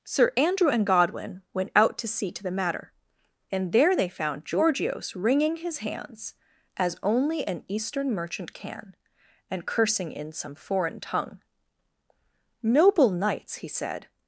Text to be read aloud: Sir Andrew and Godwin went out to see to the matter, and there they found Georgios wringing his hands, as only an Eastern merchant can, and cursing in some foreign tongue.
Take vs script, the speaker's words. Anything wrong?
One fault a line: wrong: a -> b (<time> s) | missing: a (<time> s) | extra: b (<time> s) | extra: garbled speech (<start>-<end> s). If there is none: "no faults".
extra: Noble knights he said (12.6 s)